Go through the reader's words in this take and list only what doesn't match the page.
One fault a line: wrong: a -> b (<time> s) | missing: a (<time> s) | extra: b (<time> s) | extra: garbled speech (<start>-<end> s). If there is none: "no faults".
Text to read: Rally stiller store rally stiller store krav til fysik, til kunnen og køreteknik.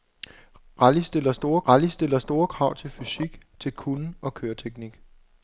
no faults